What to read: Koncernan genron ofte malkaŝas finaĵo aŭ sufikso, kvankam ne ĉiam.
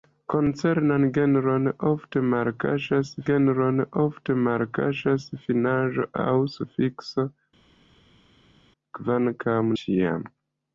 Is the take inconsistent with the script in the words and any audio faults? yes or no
yes